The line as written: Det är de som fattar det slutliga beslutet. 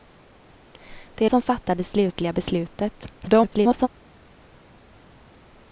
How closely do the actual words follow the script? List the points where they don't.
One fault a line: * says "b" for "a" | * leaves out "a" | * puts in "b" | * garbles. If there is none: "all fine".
* leaves out "de"
* garbles